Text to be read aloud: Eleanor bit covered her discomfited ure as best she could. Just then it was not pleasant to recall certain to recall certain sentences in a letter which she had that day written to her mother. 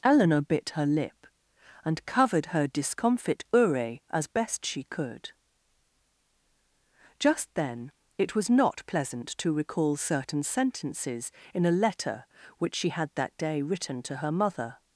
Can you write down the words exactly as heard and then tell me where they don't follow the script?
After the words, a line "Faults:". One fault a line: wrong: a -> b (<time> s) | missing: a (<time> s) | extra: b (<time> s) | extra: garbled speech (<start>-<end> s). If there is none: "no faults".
Eleanor bit her lip, and covered her discomfit ure as best she could. Just then it was not pleasant to recall certain sentences in a letter which she had that day written to her mother.
Faults:
extra: her lip and (0.7 s)
wrong: discomfited -> discomfit (2.7 s)
missing: to recall certain (10.4 s)